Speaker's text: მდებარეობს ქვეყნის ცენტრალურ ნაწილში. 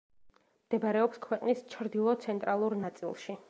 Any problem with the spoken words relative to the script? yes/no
yes